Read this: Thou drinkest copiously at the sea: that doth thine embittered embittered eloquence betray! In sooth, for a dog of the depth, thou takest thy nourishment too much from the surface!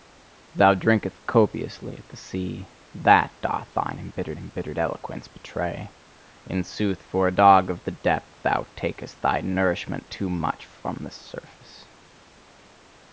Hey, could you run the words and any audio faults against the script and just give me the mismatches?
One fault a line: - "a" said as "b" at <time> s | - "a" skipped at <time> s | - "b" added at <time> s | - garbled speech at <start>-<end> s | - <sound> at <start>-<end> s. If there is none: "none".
none